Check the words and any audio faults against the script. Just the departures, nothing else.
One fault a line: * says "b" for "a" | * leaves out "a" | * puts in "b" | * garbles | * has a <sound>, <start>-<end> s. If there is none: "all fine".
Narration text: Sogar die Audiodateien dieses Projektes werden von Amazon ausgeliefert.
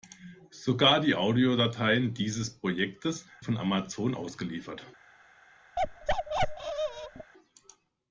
* leaves out "werden"
* has a bark, 5.8-7.3 s